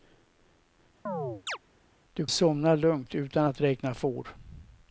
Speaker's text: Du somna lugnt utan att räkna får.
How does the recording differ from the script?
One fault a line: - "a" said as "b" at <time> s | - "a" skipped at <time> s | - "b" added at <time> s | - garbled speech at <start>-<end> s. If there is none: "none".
none